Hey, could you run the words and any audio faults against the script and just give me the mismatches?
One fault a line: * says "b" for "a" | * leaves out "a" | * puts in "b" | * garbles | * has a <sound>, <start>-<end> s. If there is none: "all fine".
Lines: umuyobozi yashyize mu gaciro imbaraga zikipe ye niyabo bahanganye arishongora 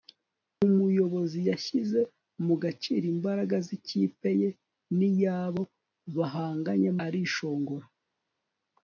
all fine